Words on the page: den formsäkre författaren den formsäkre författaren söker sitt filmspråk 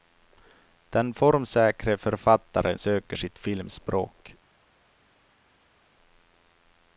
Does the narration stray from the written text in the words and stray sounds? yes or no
yes